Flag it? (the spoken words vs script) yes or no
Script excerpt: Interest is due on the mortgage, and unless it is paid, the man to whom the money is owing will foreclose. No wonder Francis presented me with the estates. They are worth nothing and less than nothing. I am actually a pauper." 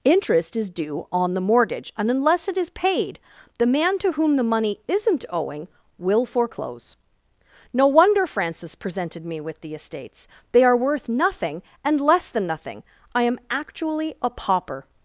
yes